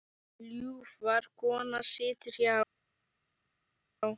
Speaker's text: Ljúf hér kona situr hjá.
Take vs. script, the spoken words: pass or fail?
fail